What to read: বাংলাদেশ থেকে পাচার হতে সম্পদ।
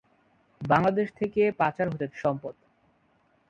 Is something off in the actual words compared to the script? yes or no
no